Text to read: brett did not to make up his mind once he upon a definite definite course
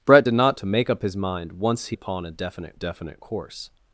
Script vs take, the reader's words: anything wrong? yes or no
no